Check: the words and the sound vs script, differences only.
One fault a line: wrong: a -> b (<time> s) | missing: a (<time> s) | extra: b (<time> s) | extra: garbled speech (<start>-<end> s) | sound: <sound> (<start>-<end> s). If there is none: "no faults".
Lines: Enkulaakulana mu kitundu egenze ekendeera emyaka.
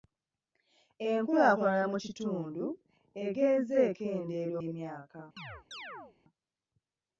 sound: chirp (5.4-6.2 s)